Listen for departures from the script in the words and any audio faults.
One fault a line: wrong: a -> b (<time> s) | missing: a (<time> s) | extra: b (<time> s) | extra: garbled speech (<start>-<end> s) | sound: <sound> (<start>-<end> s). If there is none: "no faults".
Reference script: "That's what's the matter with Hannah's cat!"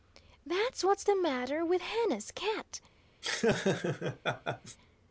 sound: laugh (3.2-4.8 s)